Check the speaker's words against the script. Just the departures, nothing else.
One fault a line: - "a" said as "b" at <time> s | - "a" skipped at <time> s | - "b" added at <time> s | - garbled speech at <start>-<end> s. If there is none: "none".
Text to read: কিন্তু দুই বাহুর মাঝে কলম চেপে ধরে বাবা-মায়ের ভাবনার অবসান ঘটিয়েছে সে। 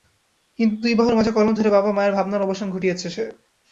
- "চেপে" skipped at 1.5 s